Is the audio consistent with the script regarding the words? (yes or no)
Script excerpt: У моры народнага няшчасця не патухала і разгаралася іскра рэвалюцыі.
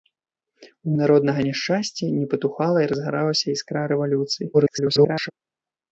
no